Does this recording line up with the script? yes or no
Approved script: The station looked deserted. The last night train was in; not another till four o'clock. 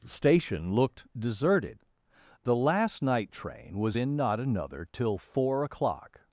no